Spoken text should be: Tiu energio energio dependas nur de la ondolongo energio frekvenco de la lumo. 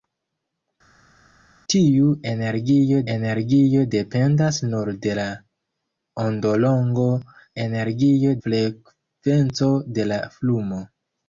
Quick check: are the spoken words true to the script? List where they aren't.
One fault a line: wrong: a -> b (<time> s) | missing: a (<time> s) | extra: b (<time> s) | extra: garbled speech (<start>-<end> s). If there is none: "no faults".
no faults